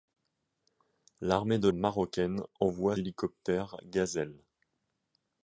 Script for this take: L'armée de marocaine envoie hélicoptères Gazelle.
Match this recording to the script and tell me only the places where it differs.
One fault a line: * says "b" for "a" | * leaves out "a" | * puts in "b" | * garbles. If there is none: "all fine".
all fine